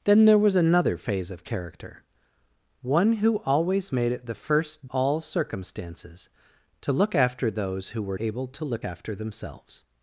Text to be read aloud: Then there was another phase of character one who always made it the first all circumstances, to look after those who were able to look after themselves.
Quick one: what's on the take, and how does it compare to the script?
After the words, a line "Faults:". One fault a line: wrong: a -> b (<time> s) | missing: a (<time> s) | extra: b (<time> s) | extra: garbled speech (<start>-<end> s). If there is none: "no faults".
Then there was another phase of character one who always made it the first all circumstances, to look after those who were able to look after themselves.
Faults:
no faults